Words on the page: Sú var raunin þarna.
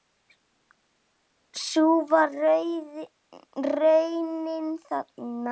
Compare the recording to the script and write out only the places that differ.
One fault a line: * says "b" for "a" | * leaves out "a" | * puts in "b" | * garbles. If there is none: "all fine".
all fine